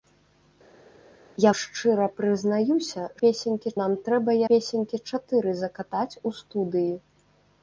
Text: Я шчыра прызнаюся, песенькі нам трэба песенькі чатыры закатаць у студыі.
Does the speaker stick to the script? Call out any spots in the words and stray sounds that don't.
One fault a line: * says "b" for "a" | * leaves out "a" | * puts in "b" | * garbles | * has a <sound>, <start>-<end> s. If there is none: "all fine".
all fine